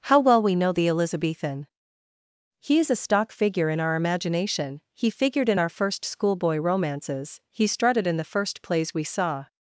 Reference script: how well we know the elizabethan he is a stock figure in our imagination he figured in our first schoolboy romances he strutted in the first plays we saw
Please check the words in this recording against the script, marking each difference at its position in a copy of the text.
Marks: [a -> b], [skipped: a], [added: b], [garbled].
how well we know the elizabethan he is a stock figure in our imagination he figured in our first schoolboy romances he strutted in the first plays we saw